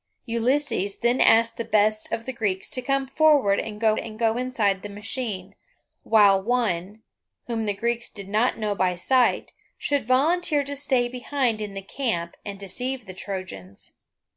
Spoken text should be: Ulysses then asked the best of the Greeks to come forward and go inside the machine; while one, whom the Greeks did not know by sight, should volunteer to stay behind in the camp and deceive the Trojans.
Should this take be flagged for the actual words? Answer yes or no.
yes